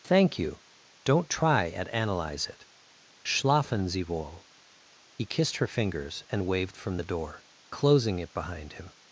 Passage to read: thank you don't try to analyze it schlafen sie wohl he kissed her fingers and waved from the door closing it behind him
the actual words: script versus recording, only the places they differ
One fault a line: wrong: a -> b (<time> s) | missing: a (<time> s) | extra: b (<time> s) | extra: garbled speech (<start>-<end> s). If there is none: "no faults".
wrong: to -> at (1.7 s)